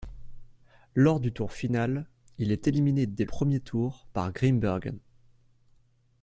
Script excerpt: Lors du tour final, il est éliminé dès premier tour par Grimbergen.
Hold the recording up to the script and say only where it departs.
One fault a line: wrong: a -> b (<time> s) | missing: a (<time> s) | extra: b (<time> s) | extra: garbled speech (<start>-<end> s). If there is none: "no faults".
no faults